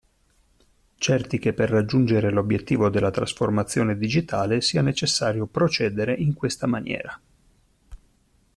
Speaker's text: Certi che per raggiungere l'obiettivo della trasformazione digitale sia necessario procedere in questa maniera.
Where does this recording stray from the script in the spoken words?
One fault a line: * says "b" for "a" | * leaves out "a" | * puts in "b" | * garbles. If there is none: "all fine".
all fine